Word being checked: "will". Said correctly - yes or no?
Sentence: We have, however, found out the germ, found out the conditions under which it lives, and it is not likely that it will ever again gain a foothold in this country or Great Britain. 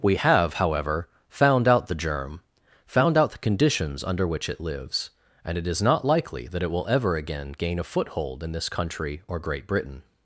yes